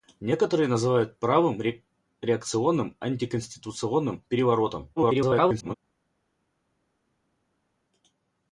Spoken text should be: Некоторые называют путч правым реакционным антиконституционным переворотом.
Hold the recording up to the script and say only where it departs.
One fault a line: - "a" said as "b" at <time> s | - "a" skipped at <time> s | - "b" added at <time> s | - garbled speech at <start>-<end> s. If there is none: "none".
- "путч" skipped at 1.1 s
- garbled speech at 5.0-5.7 s